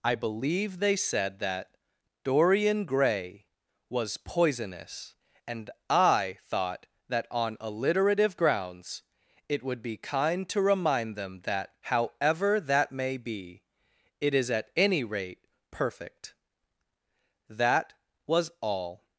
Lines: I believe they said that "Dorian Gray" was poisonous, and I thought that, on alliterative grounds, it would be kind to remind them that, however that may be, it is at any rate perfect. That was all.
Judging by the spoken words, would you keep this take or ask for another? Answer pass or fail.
pass